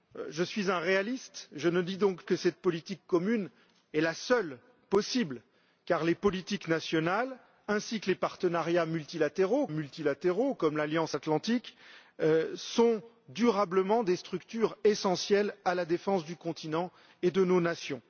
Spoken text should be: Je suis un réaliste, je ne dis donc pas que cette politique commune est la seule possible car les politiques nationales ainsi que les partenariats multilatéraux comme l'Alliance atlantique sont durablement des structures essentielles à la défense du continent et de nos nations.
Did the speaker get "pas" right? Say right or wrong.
wrong